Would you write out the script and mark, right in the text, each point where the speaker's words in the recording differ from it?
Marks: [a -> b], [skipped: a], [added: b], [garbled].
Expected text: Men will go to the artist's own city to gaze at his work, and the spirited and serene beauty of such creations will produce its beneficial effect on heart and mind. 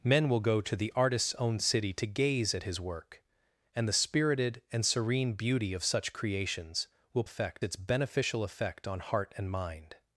Men will go to the artist's own city to gaze at his work, and the spirited and serene beauty of such creations will [produce -> effect] its beneficial effect on heart and mind.